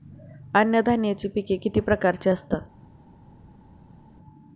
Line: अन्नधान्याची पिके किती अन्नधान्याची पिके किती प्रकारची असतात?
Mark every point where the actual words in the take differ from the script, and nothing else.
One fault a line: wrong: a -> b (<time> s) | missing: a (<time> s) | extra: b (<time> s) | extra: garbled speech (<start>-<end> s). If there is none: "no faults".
missing: अन्नधान्याची पिके किती (1.8 s)